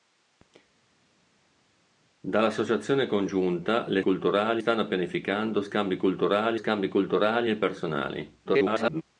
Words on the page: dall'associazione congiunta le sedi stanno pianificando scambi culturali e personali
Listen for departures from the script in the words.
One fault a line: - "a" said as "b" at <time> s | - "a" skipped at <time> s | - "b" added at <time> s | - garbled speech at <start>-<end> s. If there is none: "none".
- "sedi" said as "culturali" at 4.0 s
- "scambi culturali" added at 6.5 s
- garbled speech at 8.4-9.0 s